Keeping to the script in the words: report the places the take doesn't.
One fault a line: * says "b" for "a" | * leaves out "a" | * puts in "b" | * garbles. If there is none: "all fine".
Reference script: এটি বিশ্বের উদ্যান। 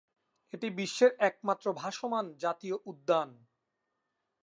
* puts in "একমাত্র ভাসমান জাতীয়"